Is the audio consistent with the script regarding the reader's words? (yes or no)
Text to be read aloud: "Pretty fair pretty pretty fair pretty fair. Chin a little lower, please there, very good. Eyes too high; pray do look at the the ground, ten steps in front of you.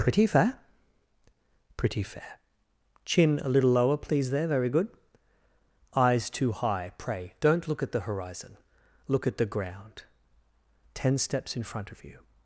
no